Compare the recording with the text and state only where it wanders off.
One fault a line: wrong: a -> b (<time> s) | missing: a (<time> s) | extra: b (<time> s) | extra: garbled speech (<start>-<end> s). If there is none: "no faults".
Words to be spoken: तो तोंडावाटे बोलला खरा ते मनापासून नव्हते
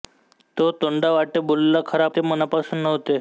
no faults